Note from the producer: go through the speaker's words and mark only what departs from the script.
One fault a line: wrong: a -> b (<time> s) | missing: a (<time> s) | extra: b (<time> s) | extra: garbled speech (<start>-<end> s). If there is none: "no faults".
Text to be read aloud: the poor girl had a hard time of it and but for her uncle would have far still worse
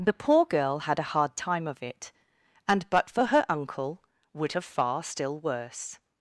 no faults